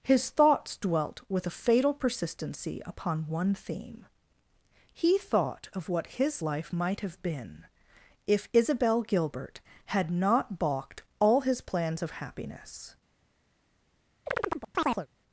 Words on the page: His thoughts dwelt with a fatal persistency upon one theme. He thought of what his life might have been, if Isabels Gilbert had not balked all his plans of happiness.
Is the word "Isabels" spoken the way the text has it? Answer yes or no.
no